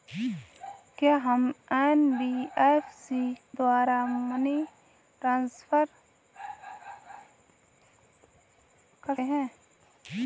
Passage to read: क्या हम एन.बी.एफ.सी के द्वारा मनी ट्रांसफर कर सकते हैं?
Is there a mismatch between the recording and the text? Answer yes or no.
yes